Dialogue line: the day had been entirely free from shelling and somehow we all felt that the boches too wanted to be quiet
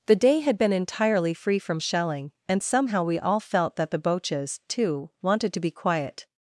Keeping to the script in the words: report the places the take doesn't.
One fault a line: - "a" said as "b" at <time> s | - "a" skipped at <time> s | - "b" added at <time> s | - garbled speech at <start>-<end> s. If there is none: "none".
none